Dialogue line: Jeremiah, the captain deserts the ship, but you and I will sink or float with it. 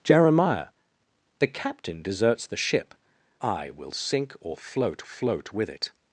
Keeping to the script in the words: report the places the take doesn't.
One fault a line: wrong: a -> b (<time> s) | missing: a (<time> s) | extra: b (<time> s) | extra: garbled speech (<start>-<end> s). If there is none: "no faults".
missing: but you and (3.0 s)
extra: float (5.0 s)